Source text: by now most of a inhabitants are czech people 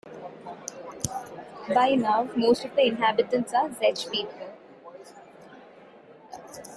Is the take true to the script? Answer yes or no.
no